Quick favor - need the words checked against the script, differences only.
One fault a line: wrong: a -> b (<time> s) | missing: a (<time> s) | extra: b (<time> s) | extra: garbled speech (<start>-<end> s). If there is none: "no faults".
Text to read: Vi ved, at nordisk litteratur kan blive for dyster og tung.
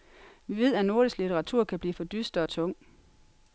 no faults